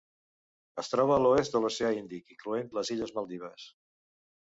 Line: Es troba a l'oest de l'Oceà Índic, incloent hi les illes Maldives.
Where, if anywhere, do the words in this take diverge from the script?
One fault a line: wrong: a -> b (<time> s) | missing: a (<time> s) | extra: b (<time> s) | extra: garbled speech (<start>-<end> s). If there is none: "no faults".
missing: hi (2.7 s)